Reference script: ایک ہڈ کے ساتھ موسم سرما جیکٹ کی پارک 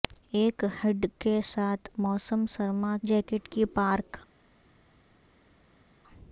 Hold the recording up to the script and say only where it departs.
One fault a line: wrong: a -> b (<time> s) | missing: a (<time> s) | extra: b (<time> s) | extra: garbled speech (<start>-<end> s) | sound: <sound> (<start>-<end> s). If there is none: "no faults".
no faults